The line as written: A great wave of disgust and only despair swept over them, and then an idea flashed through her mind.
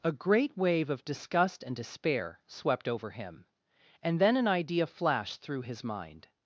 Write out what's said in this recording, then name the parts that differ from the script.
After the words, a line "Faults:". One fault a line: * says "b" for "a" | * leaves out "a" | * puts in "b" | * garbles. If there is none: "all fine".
A great wave of disgust and despair swept over him, and then an idea flashed through his mind.
Faults:
* leaves out "only"
* says "him" for "them"
* says "his" for "her"